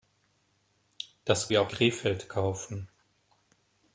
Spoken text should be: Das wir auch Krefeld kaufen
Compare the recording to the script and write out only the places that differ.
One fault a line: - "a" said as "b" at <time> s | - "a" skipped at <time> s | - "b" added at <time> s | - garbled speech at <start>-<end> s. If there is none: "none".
none